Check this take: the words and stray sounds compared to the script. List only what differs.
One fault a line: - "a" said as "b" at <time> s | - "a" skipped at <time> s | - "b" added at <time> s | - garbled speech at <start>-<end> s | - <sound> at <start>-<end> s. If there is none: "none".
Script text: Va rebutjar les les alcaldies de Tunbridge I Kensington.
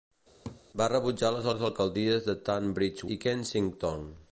- laugh at 0.4-0.6 s